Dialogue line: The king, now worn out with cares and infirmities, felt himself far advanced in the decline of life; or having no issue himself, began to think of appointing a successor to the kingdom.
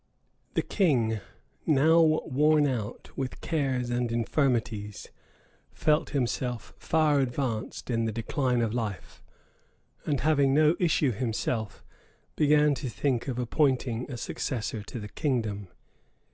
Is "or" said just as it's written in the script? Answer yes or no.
no